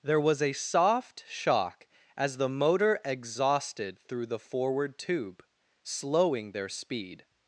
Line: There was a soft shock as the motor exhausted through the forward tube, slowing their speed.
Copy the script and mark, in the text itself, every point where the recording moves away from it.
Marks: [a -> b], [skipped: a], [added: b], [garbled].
There was a soft shock as the motor exhausted through the forward tube, slowing their speed.